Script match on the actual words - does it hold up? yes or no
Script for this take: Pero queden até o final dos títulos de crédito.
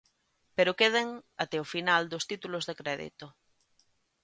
yes